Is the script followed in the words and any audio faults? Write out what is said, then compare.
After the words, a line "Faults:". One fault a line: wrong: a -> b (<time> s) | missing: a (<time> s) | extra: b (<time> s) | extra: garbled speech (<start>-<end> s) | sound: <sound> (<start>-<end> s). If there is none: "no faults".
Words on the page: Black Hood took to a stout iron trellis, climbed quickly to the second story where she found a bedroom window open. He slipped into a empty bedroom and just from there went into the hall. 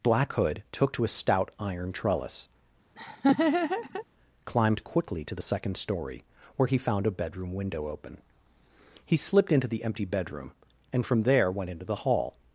Black Hood took to a stout iron trellis, climbed quickly to the second story where he found a bedroom window open. He slipped into the empty bedroom and from there went into the hall.
Faults:
sound: laugh (3.0-4.1 s)
wrong: she -> he (6.7 s)
wrong: a -> the (9.7 s)
missing: just (11.0 s)